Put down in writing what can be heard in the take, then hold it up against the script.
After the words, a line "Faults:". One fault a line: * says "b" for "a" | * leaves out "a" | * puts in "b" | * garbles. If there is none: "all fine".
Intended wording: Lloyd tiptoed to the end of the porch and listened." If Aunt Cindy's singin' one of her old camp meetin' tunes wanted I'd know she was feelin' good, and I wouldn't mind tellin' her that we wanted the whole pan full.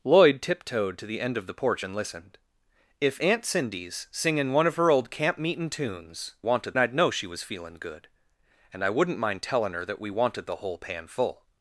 Lloyd tiptoed to the end of the porch and listened." If Aunt Cindy's singin' one of her old camp meetin' tunes wanted I'd know she was feelin' good, and I wouldn't mind tellin' her that we wanted the whole pan full.
Faults:
all fine